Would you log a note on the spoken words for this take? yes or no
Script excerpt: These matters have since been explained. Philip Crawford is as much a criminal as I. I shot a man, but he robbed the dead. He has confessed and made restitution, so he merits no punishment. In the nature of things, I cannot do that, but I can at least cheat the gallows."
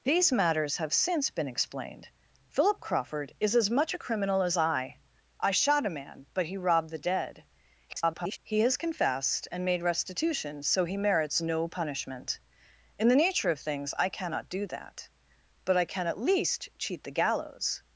yes